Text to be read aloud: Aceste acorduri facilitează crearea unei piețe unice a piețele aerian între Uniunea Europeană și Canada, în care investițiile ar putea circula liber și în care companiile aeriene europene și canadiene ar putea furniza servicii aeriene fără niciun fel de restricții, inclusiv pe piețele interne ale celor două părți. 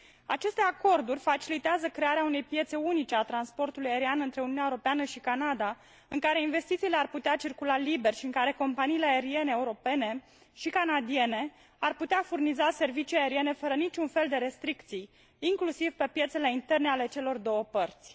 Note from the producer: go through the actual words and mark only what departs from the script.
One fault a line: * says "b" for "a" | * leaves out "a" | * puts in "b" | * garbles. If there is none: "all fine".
* says "transportului" for "piețele"